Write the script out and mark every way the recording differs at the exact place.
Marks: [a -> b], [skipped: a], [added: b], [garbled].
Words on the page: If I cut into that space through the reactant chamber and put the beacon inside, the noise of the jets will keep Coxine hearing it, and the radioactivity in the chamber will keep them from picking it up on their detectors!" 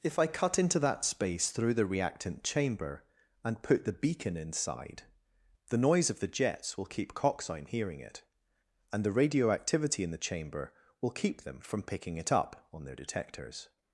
If I cut into that space through the reactant chamber and put the beacon inside, the noise of the jets will keep Coxine hearing it, and the radioactivity in the chamber will keep them from picking it up on their detectors!"